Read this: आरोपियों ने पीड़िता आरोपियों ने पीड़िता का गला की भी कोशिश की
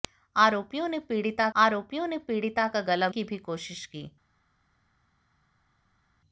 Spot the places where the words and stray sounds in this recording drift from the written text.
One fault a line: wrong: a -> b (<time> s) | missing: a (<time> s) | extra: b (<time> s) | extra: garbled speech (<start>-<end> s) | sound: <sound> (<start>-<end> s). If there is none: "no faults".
no faults